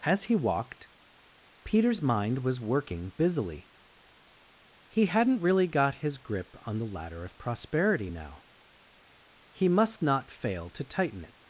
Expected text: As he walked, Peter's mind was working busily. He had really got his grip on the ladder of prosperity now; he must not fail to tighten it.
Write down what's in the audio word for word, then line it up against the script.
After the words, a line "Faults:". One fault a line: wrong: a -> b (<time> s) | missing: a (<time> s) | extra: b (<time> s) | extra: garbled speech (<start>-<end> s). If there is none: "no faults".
As he walked, Peter's mind was working busily. He hadn't really got his grip on the ladder of prosperity now; he must not fail to tighten it.
Faults:
wrong: had -> hadn't (5.1 s)